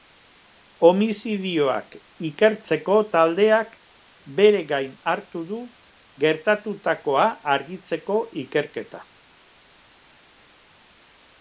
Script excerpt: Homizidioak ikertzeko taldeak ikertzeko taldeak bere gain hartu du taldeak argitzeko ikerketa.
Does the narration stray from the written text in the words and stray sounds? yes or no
yes